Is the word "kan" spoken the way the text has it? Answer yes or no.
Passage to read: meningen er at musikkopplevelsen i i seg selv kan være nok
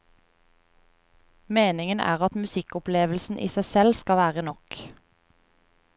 no